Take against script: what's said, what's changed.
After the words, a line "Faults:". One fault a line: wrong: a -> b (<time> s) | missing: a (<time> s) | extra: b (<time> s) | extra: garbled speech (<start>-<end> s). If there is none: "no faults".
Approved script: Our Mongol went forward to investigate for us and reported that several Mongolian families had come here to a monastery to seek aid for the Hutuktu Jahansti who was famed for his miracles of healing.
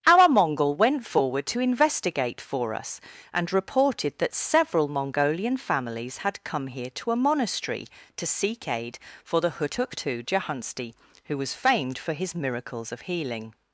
Our Mongol went forward to investigate for us and reported that several Mongolian families had come here to a monastery to seek aid for the Hutuktu Jahansti who was famed for his miracles of healing.
Faults:
no faults